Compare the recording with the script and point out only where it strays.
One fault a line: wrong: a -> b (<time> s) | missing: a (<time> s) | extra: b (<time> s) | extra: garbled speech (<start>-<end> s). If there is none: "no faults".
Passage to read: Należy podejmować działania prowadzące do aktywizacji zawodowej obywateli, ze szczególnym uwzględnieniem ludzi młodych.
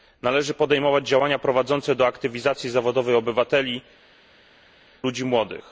missing: ze szczególnym uwzględnieniem (3.8 s)